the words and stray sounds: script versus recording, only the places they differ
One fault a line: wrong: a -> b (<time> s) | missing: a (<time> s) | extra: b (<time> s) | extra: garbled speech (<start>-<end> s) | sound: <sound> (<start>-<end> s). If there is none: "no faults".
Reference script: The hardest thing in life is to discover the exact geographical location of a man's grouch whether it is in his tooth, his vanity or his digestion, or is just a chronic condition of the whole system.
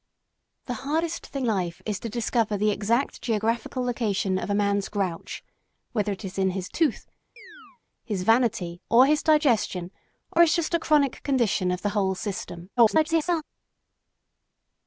missing: in (1.5 s)
sound: chirp (7.4-7.8 s)
extra: garbled speech (12.8-13.4 s)